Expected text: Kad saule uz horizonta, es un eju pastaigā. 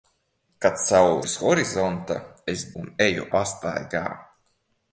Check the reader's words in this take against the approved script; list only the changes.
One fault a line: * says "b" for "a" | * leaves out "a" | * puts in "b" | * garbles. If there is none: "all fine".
all fine